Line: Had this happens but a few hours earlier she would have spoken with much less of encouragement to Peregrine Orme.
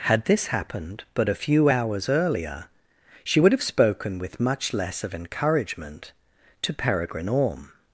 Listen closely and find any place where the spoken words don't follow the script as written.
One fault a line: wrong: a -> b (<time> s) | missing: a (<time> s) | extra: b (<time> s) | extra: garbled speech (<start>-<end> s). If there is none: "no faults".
wrong: happens -> happened (0.5 s)